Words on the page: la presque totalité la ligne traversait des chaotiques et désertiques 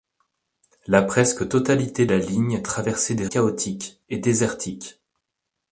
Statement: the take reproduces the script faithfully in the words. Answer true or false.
true